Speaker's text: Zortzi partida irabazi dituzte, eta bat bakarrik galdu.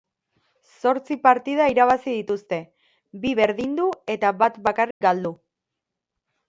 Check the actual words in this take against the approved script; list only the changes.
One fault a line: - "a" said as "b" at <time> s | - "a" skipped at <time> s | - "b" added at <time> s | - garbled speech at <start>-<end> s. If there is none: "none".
- "bi berdindu" added at 3.2 s